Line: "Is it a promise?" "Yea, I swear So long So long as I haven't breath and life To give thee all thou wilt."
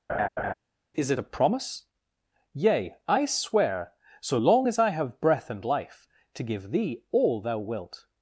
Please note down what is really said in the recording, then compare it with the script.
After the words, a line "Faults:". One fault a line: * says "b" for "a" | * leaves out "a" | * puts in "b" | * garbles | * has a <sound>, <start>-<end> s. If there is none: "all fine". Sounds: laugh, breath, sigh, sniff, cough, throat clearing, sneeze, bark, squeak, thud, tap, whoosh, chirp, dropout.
"Is it a promise?" "Yea, I swear So long as I have breath and life To give thee all thou wilt."
Faults:
* has a laugh, 0.1-0.5 s
* leaves out "So long"
* says "have" for "haven't"